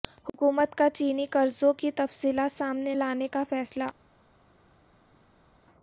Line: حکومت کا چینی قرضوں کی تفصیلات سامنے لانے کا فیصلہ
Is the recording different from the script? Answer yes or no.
no